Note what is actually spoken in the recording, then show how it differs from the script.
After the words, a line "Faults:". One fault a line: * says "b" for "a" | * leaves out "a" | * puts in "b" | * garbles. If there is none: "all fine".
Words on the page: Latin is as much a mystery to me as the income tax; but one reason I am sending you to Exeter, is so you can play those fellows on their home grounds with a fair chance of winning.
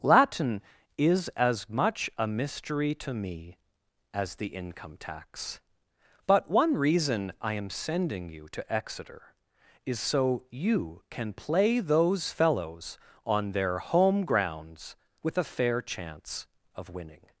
Latin is as much a mystery to me as the income tax; but one reason I am sending you to Exeter, is so you can play those fellows on their home grounds with a fair chance of winning.
Faults:
all fine